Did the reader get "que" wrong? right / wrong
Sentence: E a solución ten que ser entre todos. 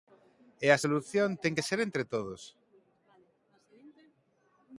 right